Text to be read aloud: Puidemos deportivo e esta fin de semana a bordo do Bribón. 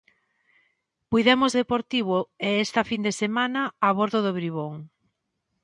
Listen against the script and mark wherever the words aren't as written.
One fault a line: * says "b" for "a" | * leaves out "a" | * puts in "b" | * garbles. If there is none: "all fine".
all fine